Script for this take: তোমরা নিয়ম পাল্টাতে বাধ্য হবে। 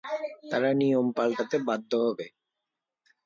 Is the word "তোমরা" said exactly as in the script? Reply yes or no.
no